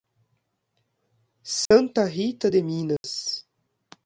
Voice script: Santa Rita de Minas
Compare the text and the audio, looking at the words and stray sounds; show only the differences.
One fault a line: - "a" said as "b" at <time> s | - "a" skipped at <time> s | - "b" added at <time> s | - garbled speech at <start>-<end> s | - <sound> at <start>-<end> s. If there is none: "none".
- dropout at 1.7-1.7 s
- dropout at 3.0-3.0 s